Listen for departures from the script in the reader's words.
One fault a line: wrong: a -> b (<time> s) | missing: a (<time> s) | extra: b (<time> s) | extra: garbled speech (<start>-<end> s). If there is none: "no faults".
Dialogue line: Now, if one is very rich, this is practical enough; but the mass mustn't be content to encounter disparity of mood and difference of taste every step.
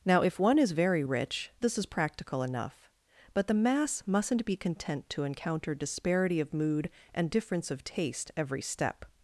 no faults